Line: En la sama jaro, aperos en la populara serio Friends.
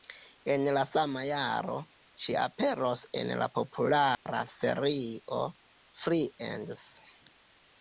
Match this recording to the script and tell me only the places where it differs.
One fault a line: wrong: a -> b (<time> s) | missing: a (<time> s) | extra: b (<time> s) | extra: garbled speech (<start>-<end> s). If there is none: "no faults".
extra: ŝi (2.3 s)